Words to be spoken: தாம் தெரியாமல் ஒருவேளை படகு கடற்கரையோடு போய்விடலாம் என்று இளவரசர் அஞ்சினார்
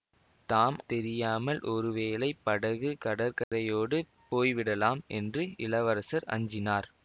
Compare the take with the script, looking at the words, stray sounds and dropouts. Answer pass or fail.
fail